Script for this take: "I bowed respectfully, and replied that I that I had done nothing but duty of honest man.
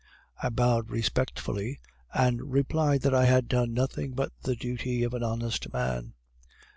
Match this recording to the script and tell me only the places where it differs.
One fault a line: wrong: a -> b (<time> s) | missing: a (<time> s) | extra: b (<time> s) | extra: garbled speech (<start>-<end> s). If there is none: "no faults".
missing: that I (3.2 s)
extra: the (4.4 s)
extra: an (5.1 s)